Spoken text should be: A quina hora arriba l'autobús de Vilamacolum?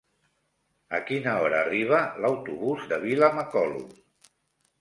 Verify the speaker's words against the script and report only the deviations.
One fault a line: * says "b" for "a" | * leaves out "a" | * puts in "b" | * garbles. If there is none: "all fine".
all fine